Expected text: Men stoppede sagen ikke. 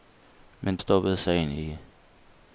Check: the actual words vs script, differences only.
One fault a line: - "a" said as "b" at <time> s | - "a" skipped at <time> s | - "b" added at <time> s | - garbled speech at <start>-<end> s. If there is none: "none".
none